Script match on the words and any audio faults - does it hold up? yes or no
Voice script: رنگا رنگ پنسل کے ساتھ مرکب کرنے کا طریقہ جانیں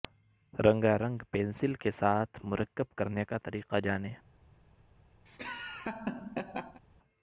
no